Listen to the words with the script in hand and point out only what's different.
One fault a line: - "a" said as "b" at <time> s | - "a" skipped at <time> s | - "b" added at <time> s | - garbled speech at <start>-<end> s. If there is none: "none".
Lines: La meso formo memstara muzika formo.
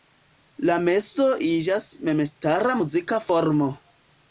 - "formo" said as "iĝas" at 1.5 s